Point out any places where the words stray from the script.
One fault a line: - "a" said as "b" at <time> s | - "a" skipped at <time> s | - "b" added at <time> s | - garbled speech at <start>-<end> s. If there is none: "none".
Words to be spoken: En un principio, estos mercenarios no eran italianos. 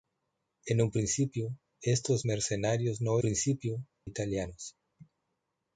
- "eran" said as "principio" at 3.2 s